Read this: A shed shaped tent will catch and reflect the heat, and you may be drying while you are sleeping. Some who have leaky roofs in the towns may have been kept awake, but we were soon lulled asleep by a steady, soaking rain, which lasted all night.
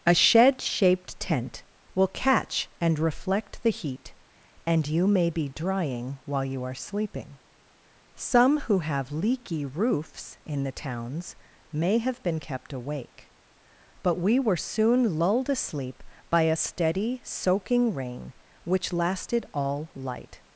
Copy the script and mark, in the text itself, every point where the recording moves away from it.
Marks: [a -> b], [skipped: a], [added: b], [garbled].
A shed shaped tent will catch and reflect the heat, and you may be drying while you are sleeping. Some who have leaky roofs in the towns may have been kept awake, but we were soon lulled asleep by a steady, soaking rain, which lasted all [night. -> light]